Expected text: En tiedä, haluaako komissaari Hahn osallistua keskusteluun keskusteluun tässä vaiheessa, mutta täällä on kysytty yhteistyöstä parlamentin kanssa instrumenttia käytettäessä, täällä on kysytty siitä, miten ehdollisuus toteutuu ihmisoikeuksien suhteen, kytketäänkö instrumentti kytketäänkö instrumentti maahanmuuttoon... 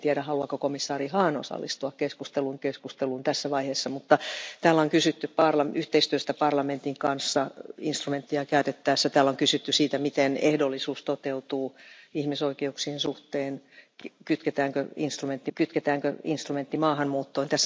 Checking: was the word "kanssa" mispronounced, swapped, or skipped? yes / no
no